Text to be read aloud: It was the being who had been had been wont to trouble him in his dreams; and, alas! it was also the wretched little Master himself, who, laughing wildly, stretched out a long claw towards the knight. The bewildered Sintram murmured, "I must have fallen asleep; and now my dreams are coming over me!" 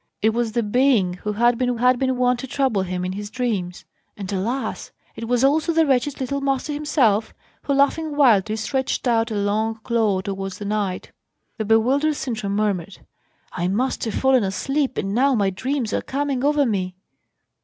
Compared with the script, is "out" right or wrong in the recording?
right